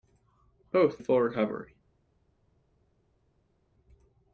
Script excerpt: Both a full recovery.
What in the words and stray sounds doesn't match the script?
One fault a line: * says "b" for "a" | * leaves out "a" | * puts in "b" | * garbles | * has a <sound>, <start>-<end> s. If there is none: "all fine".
all fine